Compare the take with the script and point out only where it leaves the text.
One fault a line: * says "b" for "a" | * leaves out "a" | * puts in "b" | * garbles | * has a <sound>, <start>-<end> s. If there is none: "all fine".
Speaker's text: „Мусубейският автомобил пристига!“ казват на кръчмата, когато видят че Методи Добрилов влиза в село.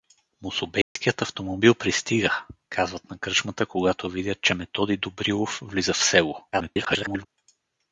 * has a dropout, 0.8-1.0 s
* garbles